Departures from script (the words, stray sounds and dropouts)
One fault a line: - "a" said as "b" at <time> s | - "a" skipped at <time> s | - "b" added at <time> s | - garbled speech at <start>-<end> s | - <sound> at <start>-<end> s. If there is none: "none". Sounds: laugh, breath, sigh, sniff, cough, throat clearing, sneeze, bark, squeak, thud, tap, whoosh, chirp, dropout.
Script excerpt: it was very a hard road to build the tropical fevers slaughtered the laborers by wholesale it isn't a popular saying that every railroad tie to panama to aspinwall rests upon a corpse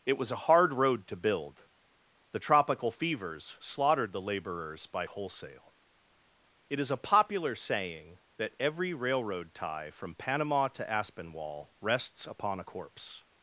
- "very" skipped at 0.3 s
- "isn't" said as "is" at 6.8 s
- "to" said as "from" at 9.9 s